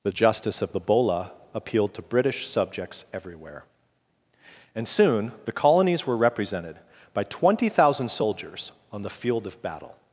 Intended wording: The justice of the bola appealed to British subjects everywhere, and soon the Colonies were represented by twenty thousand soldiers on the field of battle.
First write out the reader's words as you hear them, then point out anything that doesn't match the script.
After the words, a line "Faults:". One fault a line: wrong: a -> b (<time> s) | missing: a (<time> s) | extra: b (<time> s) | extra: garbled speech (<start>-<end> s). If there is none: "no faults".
The justice of the bola appealed to British subjects everywhere, and soon the Colonies were represented by twenty thousand soldiers on the field of battle.
Faults:
no faults